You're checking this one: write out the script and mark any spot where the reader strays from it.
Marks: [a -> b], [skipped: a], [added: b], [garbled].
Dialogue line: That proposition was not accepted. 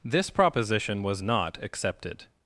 [That -> This] proposition was not accepted.